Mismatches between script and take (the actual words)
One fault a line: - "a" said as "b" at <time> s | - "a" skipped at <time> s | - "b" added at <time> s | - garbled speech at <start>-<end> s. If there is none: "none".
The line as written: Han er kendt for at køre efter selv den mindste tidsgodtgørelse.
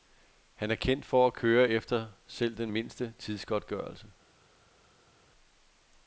none